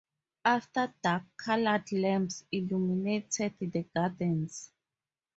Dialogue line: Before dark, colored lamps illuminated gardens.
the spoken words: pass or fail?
fail